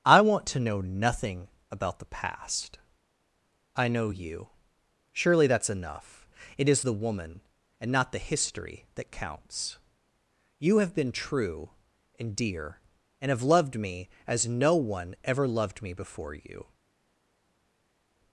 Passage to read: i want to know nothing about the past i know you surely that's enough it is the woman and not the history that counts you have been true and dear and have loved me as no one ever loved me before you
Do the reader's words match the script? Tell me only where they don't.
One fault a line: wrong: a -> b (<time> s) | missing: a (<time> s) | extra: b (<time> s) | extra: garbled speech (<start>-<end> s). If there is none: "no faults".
no faults